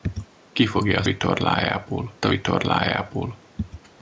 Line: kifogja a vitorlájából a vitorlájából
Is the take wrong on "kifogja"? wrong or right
right